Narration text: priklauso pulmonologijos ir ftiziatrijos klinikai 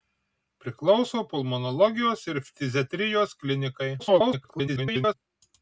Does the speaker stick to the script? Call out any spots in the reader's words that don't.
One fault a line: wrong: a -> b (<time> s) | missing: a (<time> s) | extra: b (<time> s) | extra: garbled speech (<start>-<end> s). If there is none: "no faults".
extra: garbled speech (4.0-5.1 s)